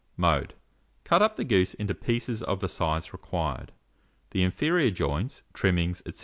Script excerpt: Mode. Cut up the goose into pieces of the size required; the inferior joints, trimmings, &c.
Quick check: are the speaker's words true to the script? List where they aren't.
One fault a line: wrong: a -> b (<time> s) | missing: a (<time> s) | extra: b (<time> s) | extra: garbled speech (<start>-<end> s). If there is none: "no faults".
no faults